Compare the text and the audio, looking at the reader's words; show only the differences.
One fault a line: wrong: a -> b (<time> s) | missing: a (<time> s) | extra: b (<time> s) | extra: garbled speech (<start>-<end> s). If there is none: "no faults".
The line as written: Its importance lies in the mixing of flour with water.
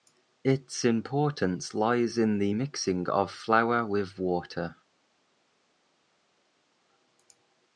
no faults